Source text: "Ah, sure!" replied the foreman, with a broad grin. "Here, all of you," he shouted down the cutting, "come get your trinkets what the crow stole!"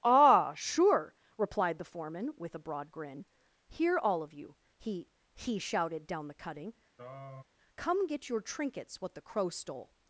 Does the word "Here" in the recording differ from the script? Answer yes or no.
no